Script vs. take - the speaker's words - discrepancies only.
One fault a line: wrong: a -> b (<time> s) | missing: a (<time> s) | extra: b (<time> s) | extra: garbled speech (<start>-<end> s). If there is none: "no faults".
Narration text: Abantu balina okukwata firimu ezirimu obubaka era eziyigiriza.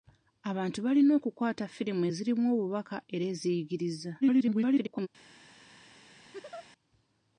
extra: garbled speech (4.2-5.1 s)